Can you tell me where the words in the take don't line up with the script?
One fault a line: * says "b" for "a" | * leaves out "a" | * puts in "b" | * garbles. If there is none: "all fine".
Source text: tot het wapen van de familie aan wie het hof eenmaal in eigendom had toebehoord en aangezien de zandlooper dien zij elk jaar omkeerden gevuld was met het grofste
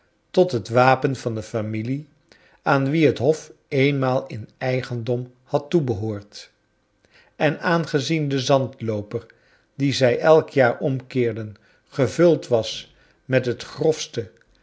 all fine